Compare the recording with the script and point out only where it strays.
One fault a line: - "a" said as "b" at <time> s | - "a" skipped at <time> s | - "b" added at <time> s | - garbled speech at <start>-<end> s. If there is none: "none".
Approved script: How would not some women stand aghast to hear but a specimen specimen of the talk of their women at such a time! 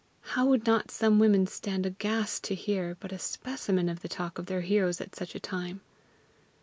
- "specimen" skipped at 3.9 s
- "women" said as "heroes" at 4.6 s